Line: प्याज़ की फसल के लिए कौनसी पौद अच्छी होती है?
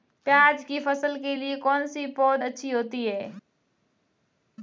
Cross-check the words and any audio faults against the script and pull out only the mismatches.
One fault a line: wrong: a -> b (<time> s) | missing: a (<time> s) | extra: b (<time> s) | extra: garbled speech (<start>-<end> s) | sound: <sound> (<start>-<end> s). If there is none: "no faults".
no faults